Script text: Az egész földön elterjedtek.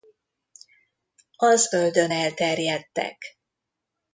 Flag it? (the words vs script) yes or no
yes